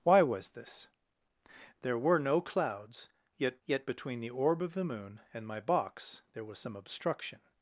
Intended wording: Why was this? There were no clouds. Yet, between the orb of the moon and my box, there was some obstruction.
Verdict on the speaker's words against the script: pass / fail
fail